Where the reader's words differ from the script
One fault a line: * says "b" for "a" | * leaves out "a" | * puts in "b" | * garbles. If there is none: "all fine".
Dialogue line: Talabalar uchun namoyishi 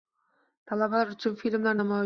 * puts in "filmlar"